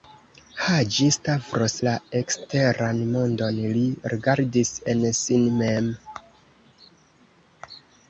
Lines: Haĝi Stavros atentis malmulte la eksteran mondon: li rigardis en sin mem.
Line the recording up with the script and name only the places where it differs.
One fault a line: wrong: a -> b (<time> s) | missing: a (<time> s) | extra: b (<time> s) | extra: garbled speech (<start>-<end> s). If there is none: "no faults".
missing: atentis malmulte (1.8 s)